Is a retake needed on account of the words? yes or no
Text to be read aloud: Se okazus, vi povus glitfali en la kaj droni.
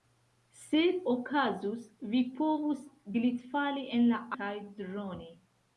no